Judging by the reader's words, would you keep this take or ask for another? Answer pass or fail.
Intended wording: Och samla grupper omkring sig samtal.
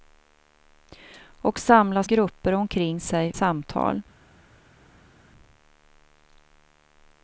pass